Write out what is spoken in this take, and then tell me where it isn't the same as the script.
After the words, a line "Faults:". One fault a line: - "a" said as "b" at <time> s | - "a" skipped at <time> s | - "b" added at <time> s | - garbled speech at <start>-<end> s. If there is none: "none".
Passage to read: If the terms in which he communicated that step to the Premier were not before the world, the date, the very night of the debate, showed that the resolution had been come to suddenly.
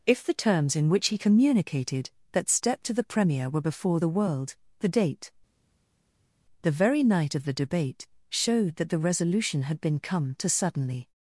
If the terms in which he communicated that step to the Premier were before the world, the date, the very night of the debate, showed that the resolution had been come to suddenly.
Faults:
- "not" skipped at 3.6 s